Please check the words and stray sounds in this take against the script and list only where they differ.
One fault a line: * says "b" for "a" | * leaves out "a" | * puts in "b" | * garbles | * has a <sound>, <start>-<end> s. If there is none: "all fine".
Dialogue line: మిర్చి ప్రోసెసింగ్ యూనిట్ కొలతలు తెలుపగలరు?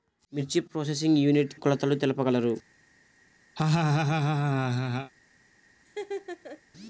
* has a laugh, 3.6-5.1 s
* has a laugh, 5.8-6.6 s